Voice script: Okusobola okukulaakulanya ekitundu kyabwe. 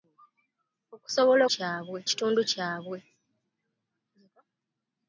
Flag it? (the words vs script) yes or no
yes